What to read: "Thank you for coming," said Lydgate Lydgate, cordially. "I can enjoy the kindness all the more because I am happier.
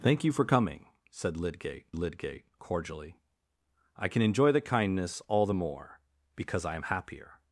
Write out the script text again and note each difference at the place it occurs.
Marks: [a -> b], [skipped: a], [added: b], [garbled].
"Thank you for coming," said Lydgate Lydgate, cordially. "I can enjoy the kindness all the more because I am happier.